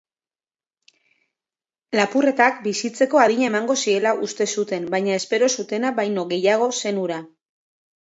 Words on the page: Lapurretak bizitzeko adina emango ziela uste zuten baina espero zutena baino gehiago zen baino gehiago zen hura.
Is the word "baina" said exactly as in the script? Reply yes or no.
yes